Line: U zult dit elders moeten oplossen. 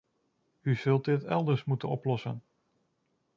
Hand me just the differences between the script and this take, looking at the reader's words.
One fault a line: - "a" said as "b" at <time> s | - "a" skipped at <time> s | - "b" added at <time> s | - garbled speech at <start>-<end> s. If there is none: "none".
none